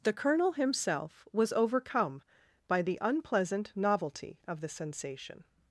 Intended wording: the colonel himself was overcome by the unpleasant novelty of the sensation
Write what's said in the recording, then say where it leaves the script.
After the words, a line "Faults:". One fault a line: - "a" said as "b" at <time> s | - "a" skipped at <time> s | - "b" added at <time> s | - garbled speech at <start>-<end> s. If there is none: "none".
the colonel himself was overcome by the unpleasant novelty of the sensation
Faults:
none